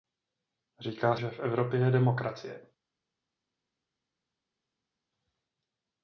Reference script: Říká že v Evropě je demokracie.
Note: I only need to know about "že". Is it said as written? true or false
true